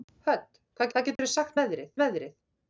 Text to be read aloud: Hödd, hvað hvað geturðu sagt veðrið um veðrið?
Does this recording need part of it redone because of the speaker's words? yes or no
no